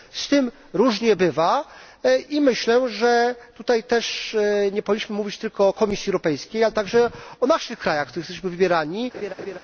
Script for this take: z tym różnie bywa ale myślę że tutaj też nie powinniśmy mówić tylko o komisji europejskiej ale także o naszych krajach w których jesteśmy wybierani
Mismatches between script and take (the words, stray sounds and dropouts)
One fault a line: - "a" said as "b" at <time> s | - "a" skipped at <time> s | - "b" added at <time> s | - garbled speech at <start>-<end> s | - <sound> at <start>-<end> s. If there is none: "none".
- "ale" said as "i" at 2.3 s
- laugh at 9.1-9.6 s